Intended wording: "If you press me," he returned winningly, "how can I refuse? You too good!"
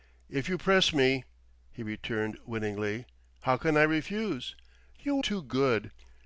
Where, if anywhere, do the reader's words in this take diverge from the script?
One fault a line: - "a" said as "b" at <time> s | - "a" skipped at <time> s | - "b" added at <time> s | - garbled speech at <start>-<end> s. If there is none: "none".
none